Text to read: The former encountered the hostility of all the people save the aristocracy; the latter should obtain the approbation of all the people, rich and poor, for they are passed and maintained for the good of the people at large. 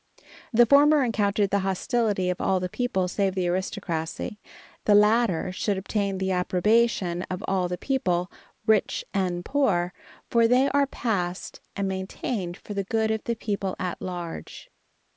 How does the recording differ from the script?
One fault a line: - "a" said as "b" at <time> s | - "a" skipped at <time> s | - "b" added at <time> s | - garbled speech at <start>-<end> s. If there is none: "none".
none